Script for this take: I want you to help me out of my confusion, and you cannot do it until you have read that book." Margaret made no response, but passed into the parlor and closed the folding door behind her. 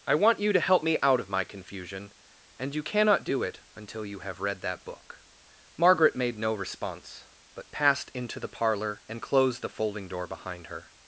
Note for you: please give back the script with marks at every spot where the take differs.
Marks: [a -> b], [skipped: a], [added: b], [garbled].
I want you to help me out of my confusion, and you cannot do it until you have read that book." Margaret made no response, but passed into the parlor and closed the folding door behind her.